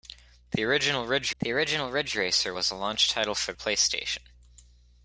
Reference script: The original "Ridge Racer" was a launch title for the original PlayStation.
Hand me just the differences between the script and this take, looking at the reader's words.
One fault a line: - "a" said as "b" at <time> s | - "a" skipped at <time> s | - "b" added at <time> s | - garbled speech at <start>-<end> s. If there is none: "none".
- "the original Ridge" added at 1.4 s
- "the original" skipped at 3.5 s